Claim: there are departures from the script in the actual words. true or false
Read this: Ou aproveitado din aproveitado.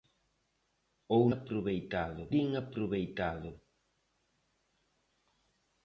false